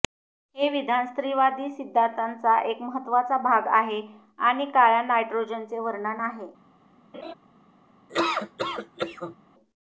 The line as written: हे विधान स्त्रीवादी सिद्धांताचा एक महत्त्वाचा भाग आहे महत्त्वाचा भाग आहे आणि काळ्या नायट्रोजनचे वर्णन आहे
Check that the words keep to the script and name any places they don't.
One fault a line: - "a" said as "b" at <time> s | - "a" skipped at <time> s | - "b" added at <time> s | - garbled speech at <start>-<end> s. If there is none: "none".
- "महत्त्वाचा भाग आहे" skipped at 4.0 s